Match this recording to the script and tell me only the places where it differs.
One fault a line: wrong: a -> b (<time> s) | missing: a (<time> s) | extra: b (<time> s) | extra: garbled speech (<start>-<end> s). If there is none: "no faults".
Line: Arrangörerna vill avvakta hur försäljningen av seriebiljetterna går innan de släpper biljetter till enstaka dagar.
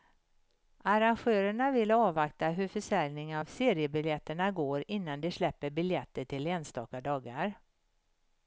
no faults